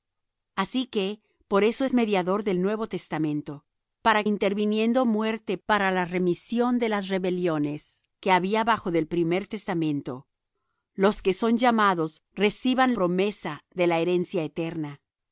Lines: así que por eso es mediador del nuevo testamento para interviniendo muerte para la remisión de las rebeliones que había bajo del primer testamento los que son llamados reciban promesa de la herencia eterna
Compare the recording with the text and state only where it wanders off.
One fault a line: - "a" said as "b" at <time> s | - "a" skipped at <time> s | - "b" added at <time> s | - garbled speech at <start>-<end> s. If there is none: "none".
none